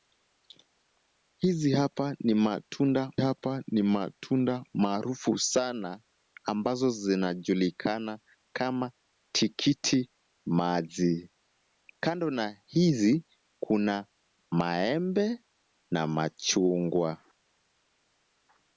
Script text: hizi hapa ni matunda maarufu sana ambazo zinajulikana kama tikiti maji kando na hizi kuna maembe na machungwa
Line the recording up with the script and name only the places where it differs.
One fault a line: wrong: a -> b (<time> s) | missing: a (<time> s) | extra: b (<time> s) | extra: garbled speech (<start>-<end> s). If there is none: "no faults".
extra: hapa ni matunda (3.2 s)